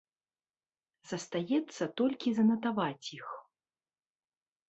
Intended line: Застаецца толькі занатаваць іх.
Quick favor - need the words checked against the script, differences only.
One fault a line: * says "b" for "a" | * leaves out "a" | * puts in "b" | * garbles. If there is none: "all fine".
all fine